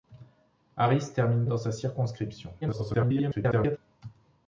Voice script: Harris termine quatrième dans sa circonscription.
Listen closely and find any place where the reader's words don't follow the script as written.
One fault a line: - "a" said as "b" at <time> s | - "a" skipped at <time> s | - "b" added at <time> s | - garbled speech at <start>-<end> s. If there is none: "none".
- "quatrième" skipped at 1.4 s
- garbled speech at 2.6-3.8 s